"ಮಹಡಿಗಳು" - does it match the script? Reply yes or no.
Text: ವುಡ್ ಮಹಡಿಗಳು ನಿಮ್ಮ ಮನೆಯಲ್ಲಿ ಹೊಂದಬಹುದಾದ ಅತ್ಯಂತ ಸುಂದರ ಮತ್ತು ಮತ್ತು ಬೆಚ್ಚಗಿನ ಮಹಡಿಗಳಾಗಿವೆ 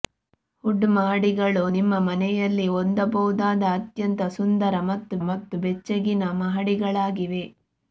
yes